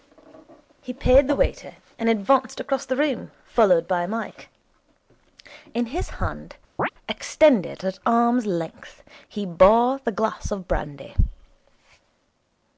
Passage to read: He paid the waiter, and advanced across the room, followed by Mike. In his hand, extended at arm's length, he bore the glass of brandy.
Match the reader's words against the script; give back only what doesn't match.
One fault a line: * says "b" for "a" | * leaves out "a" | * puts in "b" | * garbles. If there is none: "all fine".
all fine